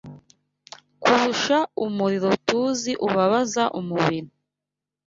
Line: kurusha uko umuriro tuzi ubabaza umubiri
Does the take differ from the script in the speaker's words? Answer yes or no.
yes